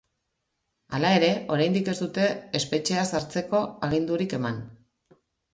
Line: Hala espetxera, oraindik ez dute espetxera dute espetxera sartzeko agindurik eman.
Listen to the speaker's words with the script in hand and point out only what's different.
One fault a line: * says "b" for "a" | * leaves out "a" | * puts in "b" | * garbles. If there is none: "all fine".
* says "ere" for "espetxera"
* leaves out "dute espetxera"